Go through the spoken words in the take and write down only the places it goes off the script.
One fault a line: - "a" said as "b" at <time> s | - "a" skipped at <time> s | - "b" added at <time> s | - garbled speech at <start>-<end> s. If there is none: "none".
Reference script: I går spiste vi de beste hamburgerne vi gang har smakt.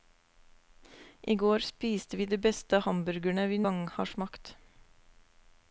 none